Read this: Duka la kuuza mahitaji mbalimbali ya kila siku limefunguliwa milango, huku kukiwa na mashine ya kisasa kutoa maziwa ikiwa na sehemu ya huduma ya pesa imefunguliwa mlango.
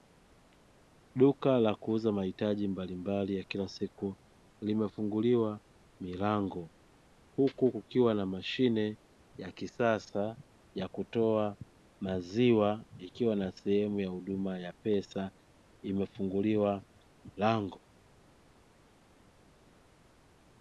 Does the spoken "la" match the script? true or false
true